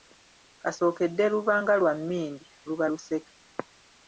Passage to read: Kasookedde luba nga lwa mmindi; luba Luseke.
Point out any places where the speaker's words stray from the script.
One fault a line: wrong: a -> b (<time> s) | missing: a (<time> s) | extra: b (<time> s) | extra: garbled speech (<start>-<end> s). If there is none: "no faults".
no faults